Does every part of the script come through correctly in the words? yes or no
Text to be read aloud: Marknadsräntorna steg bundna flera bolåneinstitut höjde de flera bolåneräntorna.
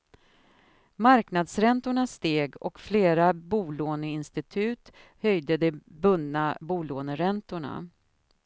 no